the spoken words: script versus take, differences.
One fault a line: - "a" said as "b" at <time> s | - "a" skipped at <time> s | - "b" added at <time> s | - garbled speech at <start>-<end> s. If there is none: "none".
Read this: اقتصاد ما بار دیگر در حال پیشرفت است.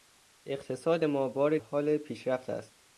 - "دیگر در" skipped at 1.6 s